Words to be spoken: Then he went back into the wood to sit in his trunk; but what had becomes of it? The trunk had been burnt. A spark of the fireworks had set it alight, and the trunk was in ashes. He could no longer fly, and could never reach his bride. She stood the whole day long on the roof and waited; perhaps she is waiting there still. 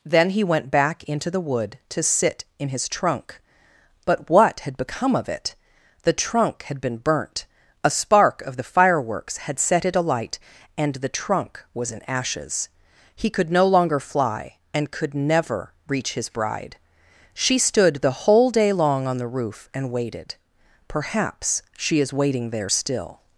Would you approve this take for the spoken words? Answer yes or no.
no